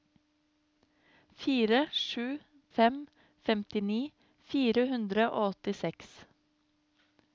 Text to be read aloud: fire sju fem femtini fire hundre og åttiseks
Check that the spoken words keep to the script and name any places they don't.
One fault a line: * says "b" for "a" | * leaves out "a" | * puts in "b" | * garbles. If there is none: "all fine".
all fine